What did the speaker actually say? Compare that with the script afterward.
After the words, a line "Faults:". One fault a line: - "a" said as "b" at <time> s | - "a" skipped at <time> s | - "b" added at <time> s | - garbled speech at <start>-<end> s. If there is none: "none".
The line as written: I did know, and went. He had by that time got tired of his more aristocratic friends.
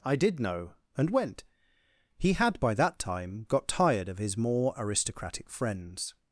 I did know, and went. He had by that time got tired of his more aristocratic friends.
Faults:
none